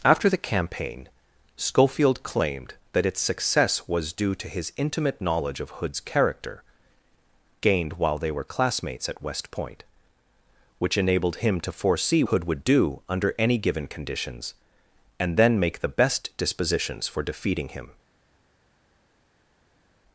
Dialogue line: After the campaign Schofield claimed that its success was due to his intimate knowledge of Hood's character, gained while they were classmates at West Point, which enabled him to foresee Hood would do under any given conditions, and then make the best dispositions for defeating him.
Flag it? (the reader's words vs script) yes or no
no